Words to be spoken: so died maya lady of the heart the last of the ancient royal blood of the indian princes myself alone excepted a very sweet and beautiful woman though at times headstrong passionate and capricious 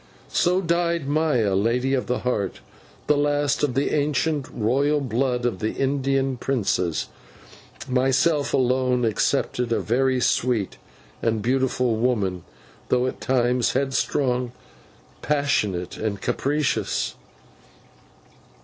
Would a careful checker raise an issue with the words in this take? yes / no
no